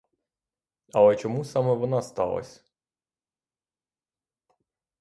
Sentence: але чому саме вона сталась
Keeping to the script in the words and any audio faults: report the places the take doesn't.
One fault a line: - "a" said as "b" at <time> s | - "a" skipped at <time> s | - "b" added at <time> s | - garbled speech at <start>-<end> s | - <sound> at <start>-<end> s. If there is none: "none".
none